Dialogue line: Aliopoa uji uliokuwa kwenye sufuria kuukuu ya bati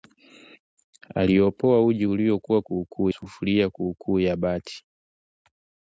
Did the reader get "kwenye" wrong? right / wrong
wrong